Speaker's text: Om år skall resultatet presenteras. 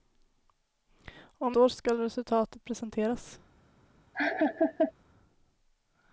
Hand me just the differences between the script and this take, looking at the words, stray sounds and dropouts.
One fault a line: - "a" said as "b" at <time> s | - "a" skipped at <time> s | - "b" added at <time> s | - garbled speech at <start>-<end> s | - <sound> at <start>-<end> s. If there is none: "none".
- laugh at 4.1-4.9 s